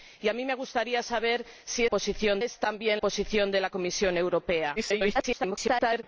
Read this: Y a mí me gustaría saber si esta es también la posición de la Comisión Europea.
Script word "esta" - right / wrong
wrong